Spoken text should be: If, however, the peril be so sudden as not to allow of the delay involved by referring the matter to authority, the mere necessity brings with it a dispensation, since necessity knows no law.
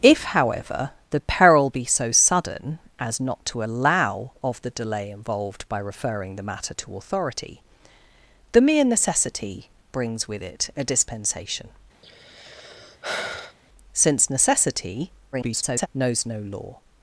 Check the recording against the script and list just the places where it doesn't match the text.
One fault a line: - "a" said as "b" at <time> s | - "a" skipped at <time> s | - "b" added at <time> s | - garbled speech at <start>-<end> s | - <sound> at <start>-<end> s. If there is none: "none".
- sigh at 12.0-13.6 s
- garbled speech at 15.3-15.9 s